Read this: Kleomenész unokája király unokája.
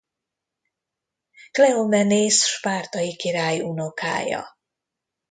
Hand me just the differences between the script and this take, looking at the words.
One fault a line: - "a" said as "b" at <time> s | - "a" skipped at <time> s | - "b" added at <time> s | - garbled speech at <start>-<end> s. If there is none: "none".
- "unokája" said as "spártai" at 2.5 s